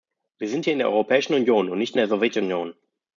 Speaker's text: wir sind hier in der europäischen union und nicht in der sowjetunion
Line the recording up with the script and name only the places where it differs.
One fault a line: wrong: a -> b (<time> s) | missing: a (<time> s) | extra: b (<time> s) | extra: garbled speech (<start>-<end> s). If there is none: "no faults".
no faults